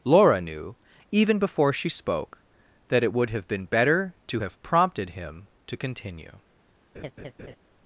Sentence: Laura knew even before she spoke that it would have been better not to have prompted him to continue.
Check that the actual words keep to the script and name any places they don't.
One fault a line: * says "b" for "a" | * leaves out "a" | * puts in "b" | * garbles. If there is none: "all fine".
* leaves out "not"